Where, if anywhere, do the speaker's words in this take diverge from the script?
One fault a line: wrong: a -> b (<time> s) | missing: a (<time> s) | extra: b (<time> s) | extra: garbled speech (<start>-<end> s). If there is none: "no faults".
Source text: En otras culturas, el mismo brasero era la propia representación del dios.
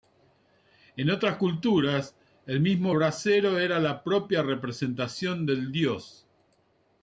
no faults